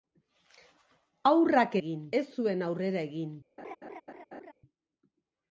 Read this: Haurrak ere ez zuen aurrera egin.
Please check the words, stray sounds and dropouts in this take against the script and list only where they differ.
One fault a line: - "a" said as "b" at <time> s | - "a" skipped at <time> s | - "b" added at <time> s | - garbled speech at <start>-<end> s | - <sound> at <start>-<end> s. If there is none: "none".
- "ere" said as "egin" at 1.8 s
- laugh at 3.6-4.5 s